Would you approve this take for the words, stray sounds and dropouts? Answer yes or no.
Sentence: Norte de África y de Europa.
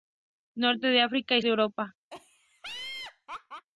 no